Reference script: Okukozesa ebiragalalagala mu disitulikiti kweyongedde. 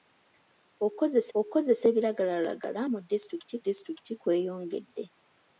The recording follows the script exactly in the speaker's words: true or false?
false